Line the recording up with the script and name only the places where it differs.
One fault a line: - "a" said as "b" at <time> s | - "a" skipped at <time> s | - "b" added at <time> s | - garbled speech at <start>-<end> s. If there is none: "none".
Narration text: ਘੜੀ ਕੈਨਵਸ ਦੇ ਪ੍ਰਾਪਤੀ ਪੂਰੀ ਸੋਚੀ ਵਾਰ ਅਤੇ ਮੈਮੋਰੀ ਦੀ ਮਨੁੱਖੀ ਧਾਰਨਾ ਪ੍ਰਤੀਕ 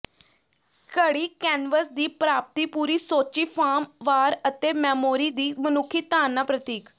- "ਦੇ" said as "ਦੀ" at 1.9 s
- "ਫਾਰਮ" added at 3.5 s